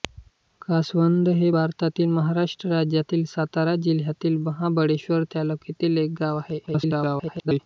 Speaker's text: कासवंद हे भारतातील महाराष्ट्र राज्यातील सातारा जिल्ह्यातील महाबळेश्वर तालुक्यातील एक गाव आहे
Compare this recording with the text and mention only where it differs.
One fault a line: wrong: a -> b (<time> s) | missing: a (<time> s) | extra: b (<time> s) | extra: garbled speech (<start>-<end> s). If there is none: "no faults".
extra: garbled speech (6.7-7.6 s)